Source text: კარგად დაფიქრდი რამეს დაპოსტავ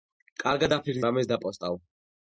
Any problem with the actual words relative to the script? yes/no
no